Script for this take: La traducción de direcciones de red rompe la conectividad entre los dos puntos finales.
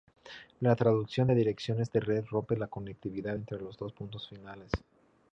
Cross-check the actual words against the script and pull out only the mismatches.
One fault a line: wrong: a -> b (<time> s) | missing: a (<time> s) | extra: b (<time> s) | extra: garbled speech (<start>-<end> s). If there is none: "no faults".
no faults